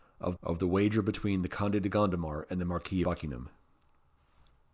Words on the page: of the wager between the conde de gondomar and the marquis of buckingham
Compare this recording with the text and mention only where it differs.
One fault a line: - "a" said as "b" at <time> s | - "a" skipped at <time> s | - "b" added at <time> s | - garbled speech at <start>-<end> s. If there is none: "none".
- "of" added at 0.4 s
- "of" skipped at 3.0 s